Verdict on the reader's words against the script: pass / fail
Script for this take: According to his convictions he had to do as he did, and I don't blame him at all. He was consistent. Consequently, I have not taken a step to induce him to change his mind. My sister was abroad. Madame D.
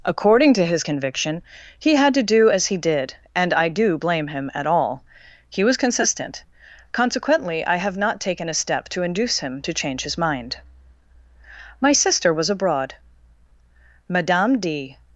fail